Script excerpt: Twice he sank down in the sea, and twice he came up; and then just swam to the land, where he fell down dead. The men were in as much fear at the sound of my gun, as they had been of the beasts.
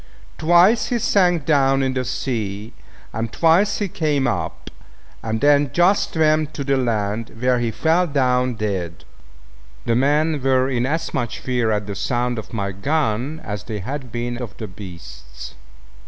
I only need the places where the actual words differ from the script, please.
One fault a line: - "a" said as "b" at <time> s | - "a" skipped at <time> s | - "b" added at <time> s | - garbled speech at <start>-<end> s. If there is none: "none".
none